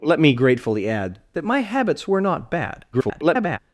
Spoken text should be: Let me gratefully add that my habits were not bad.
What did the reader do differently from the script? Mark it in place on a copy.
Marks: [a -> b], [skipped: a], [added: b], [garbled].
Let me gratefully add that my habits were not bad. [garbled]